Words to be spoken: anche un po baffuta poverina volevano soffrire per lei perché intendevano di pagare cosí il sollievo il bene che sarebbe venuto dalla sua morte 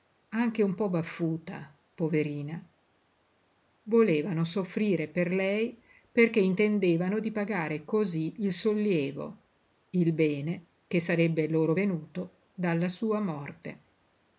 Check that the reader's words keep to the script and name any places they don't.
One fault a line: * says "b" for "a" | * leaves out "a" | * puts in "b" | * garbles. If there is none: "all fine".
* puts in "loro"